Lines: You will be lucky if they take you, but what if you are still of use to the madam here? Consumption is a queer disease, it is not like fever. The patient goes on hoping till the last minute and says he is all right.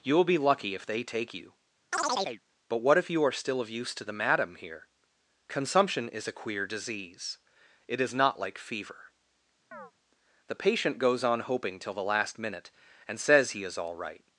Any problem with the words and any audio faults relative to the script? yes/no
yes